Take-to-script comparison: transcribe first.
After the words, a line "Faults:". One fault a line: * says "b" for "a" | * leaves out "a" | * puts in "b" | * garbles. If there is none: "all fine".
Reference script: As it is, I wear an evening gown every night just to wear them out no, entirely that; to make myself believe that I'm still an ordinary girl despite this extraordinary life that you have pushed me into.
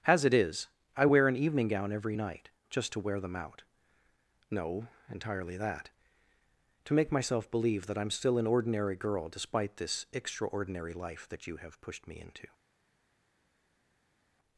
As it is, I wear an evening gown every night just to wear them out no, entirely that; to make myself believe that I'm still an ordinary girl despite this extraordinary life that you have pushed me into.
Faults:
all fine